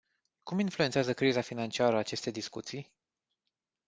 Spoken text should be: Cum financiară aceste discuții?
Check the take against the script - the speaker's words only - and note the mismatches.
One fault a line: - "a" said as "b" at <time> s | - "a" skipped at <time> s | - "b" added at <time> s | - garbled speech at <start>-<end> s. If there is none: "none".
- "influențează criza" added at 0.6 s